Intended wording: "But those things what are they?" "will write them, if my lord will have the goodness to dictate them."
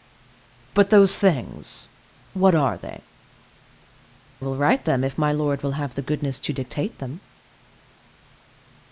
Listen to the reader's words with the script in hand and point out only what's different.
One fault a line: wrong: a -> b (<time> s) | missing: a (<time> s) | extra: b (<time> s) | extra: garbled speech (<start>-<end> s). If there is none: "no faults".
no faults